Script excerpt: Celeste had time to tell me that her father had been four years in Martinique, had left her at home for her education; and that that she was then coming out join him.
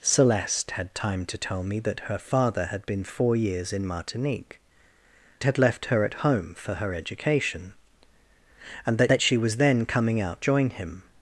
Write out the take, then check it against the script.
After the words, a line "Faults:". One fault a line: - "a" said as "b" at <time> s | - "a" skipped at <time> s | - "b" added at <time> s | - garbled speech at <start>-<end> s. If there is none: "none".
Celeste had time to tell me that her father had been four years in Martinique, had left her at home for her education; and that that she was then coming out join him.
Faults:
none